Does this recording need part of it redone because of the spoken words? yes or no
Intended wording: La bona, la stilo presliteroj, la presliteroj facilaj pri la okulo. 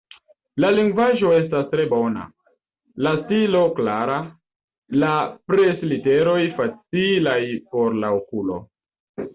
yes